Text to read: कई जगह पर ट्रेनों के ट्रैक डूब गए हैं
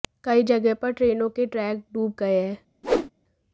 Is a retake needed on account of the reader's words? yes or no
no